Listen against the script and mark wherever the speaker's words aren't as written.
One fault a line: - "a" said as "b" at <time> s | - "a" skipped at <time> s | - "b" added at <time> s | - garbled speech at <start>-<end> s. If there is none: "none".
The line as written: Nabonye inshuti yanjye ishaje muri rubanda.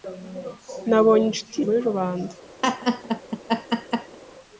- "yanjye ishaje" skipped at 1.6 s